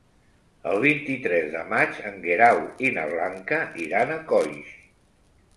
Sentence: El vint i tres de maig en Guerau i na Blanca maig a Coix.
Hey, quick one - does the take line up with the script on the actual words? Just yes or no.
no